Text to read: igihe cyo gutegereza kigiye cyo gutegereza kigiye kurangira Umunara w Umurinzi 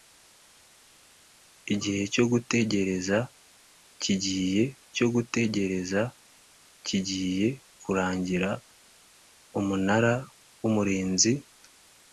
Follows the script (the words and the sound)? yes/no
yes